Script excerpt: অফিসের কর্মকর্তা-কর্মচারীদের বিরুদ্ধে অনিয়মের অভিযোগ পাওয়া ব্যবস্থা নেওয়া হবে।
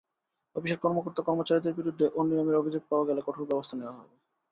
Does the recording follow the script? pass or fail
fail